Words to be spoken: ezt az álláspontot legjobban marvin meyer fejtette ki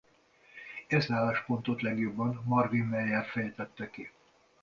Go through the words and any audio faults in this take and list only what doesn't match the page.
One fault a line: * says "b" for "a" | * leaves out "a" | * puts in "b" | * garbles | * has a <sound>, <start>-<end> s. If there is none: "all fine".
* leaves out "az"